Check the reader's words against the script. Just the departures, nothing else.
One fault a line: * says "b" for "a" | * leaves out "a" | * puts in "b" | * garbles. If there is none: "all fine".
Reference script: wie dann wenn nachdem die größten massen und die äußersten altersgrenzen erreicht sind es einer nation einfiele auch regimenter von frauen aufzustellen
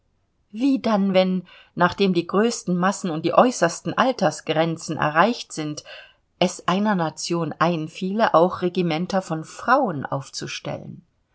all fine